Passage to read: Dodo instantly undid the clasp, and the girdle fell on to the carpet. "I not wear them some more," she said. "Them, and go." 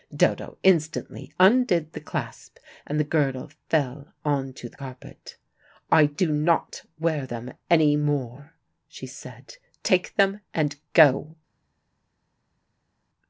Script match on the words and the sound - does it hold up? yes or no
no